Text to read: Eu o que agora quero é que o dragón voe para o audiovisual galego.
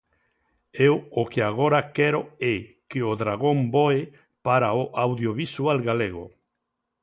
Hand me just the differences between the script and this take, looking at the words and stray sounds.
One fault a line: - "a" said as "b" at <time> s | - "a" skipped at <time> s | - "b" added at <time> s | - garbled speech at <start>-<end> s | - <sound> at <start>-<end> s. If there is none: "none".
none